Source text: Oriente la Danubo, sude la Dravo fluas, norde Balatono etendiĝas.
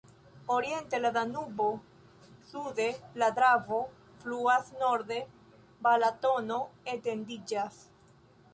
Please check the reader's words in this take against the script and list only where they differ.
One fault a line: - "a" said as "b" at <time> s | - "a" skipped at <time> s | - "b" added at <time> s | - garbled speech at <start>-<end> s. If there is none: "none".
none